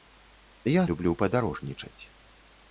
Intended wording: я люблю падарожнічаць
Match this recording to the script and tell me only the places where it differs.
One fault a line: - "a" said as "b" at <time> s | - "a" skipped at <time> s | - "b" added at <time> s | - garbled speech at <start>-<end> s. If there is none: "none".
none